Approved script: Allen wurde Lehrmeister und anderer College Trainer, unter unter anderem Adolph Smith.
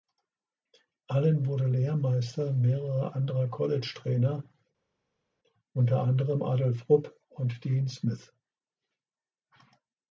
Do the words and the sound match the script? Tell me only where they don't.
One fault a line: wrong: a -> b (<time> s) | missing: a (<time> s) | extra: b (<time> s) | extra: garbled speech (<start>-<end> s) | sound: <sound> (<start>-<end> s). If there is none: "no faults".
wrong: und -> mehrerer (2.5 s)
missing: unter (6.0 s)
extra: Rupp und Dean (6.9 s)